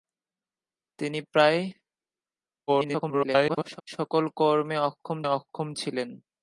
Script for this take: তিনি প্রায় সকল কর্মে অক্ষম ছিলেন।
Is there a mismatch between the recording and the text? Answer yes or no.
yes